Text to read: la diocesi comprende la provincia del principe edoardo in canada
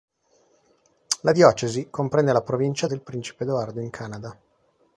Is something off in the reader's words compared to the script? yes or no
no